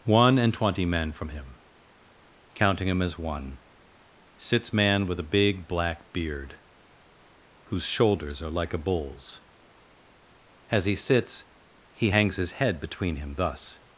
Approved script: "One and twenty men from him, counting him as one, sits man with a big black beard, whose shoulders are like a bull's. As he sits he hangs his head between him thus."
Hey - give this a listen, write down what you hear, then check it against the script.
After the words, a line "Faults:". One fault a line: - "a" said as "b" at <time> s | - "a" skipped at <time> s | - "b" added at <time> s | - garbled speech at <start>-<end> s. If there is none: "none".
"One and twenty men from him, counting him as one, sits man with a big black beard, whose shoulders are like a bull's. As he sits he hangs his head between him thus."
Faults:
none